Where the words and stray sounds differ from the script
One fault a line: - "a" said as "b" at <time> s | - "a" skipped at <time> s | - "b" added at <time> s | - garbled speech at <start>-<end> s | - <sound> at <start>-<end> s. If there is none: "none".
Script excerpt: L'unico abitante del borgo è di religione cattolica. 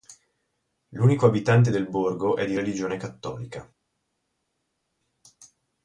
none